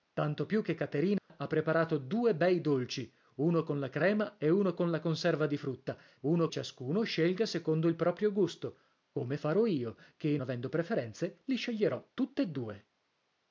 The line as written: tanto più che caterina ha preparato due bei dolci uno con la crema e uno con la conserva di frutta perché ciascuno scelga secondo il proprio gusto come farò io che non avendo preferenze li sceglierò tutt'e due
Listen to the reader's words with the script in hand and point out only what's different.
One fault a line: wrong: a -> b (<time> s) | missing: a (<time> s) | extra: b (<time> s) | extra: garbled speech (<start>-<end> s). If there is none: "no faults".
wrong: perché -> uno (6.2 s)
missing: non (10.4 s)